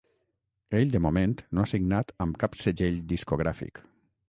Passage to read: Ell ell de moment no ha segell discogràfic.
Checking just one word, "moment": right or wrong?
right